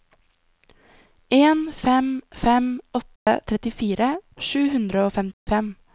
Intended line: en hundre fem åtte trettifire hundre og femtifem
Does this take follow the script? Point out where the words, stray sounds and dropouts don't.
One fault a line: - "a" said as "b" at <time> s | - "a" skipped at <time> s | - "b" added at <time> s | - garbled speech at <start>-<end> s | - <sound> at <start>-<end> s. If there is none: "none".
- "hundre" said as "fem" at 1.8 s
- dropout at 3.2-3.3 s
- "sju" added at 4.5 s
- dropout at 5.3-5.5 s